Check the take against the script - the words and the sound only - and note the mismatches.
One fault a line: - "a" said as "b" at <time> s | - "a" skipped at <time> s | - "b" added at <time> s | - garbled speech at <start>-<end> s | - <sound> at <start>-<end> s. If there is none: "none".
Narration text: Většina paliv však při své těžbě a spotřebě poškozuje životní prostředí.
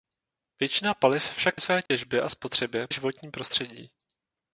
- "při" skipped at 1.6 s
- dropout at 1.9-1.9 s
- "poškozuje" skipped at 2.9 s